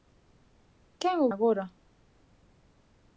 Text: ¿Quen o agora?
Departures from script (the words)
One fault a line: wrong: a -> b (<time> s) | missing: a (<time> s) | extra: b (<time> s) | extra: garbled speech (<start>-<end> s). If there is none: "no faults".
no faults